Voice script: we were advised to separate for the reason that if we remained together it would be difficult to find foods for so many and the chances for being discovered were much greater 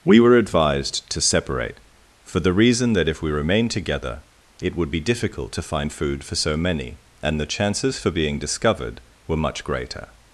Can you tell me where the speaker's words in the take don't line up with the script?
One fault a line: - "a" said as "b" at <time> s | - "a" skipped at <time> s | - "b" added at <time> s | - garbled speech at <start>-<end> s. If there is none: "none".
- "foods" said as "food" at 5.9 s